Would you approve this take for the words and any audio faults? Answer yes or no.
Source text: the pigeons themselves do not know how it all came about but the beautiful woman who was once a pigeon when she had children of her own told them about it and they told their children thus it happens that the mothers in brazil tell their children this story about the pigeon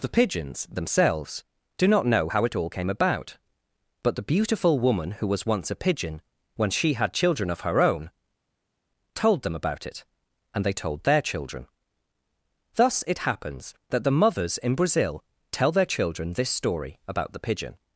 yes